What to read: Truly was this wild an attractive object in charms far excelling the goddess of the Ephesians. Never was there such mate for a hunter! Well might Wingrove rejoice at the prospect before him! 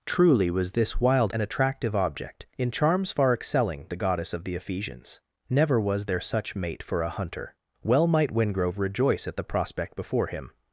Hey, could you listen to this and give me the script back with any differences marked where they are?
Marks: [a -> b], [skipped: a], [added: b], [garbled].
Truly was this wild an attractive object in charms far excelling the goddess of the Ephesians. Never was there such mate for a hunter! Well might Wingrove rejoice at the prospect before him!